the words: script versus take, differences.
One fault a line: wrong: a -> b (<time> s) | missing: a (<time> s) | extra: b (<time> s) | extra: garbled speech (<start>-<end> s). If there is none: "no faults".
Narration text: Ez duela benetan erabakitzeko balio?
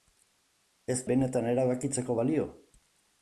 missing: duela (0.9 s)